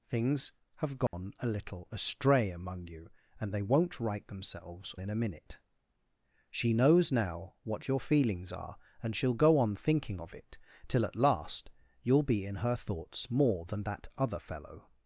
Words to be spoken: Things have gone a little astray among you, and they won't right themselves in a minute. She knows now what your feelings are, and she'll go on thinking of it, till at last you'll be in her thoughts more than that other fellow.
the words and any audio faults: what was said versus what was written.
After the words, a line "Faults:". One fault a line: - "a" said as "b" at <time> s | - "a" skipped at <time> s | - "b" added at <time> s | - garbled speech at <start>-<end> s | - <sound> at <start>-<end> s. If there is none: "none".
Things have gone a little astray among you, and they won't right themselves in a minute. She knows now what your feelings are, and she'll go on thinking of it, till at last you'll be in her thoughts more than that other fellow.
Faults:
- dropout at 1.1-1.1 s